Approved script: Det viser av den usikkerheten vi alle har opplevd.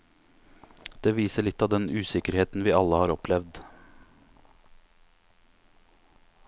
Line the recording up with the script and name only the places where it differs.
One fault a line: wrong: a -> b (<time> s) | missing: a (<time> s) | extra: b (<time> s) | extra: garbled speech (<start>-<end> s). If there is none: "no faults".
extra: litt (1.4 s)